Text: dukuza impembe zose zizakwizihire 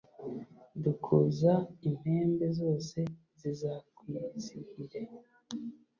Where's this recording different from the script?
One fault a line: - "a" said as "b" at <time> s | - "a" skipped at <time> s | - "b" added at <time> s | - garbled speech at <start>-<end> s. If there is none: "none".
none